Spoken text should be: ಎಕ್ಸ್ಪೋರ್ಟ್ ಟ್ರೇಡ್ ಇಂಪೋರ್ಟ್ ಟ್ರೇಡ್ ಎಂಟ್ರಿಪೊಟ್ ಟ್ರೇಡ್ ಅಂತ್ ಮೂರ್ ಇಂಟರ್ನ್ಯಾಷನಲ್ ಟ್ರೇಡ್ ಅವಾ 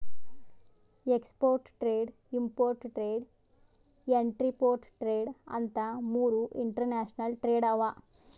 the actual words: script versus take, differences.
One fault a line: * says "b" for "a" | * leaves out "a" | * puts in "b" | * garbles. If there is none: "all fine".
all fine